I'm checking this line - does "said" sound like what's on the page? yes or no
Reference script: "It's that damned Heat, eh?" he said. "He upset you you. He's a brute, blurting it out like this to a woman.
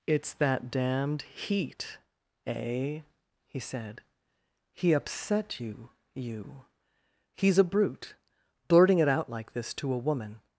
yes